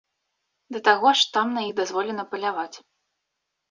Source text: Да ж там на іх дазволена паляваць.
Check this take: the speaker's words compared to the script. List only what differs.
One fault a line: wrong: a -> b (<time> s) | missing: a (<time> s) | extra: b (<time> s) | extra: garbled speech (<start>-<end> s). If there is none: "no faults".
extra: таго (0.9 s)